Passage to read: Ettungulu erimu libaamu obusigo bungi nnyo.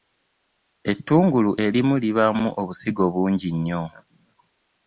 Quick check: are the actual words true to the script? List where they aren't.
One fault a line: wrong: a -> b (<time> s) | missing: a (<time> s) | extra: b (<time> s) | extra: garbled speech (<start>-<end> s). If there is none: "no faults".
no faults